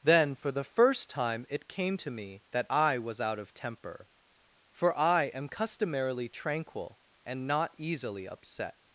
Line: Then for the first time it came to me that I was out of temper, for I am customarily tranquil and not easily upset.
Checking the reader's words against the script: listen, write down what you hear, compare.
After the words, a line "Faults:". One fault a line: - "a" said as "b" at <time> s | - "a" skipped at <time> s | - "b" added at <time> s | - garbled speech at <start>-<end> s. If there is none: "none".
Then for the first time it came to me that I was out of temper, for I am customarily tranquil and not easily upset.
Faults:
none